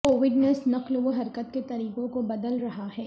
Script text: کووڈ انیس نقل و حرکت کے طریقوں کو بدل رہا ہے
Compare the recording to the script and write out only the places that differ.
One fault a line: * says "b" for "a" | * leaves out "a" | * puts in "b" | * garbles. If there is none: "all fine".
all fine